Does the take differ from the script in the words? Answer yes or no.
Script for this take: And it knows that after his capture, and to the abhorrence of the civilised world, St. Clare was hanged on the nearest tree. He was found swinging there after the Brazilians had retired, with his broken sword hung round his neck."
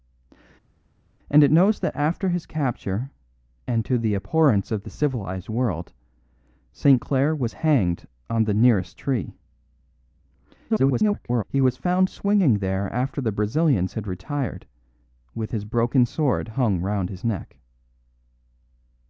yes